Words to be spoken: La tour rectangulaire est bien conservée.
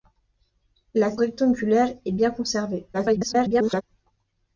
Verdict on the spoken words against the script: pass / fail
fail